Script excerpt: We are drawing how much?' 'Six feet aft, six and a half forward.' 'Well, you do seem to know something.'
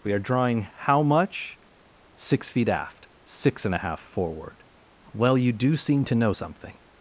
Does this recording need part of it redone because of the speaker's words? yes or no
no